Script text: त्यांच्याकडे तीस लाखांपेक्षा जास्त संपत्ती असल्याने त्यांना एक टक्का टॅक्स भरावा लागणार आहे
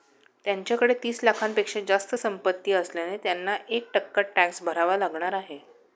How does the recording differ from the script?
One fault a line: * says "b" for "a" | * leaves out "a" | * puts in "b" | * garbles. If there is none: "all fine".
all fine